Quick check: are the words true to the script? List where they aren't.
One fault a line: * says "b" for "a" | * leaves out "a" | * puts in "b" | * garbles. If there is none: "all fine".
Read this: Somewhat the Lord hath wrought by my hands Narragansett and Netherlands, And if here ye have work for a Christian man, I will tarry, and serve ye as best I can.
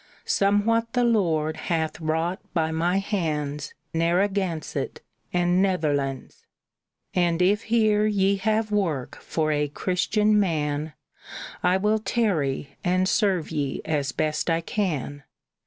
all fine